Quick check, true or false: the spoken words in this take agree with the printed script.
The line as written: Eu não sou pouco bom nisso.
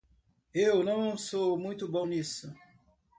false